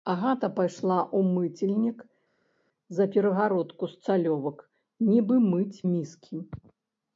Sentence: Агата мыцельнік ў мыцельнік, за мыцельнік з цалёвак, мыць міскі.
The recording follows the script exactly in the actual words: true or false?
false